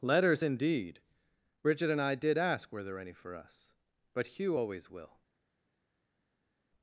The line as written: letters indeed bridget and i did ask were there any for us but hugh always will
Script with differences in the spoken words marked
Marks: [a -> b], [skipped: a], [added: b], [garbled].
letters indeed bridget and i did ask were there any for us but hugh always will